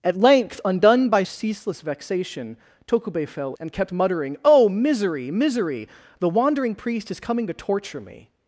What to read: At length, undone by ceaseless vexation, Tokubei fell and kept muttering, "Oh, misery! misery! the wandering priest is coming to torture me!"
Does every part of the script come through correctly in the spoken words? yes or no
yes